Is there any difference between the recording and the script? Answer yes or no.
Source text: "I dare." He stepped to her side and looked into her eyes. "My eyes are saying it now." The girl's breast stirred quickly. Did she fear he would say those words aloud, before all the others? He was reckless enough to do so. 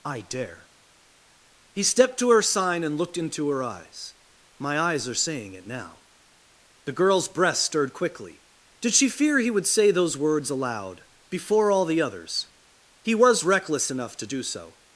yes